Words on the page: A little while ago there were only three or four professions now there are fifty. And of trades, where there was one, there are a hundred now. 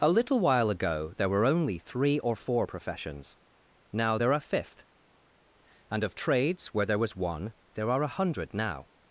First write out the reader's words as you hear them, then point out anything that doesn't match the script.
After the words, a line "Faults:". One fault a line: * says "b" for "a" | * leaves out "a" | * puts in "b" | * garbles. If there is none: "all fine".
A little while ago there were only three or four professions now there are fifth. And of trades, where there was one, there are a hundred now.
Faults:
* says "fifth" for "fifty"